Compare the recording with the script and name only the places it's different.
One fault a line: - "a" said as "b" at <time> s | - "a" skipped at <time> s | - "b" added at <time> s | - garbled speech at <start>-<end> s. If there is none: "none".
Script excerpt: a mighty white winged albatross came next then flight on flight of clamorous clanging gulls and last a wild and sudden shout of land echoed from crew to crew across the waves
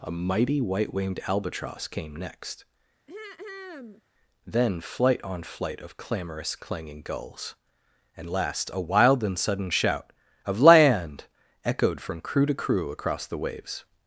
none